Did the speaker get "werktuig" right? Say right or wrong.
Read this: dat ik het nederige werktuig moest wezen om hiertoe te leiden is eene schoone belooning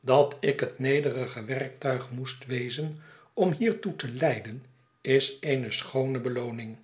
right